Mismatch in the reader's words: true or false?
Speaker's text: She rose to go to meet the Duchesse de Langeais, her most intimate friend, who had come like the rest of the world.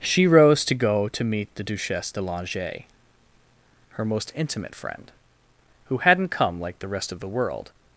true